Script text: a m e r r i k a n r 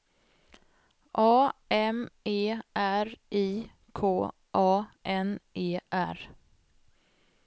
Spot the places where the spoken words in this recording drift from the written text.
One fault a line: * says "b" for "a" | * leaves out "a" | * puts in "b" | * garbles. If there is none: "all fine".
* leaves out "r"
* puts in "e"